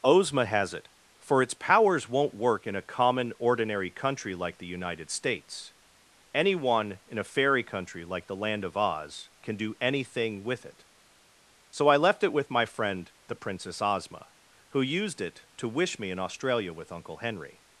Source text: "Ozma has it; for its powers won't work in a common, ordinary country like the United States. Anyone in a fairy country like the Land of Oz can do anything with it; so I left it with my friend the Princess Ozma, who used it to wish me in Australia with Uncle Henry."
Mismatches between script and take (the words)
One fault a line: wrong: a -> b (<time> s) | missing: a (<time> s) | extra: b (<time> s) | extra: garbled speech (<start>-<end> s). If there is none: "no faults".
no faults